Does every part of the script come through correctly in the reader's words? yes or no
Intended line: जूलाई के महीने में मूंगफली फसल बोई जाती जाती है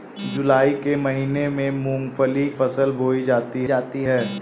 yes